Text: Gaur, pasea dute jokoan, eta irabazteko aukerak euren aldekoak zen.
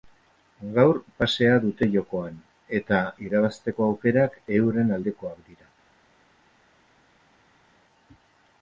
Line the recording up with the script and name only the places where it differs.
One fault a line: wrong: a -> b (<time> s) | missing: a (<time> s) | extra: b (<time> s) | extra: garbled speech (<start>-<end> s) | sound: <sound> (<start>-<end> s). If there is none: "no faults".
wrong: zen -> dira (5.5 s)